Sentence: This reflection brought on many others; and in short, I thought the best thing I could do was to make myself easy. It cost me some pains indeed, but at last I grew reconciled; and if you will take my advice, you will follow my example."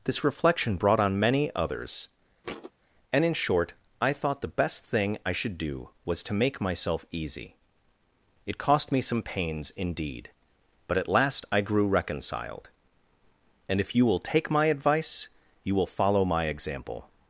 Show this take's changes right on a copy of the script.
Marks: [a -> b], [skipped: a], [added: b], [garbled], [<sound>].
This reflection brought on many others; [thud] and in short, I thought the best thing I [could -> should] do was to make myself easy. It cost me some pains indeed, but at last I grew reconciled; and if you will take my advice, you will follow my example."